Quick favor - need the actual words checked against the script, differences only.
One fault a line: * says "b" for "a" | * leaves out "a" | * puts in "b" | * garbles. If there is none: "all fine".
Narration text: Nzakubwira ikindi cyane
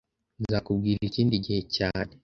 * puts in "gihe"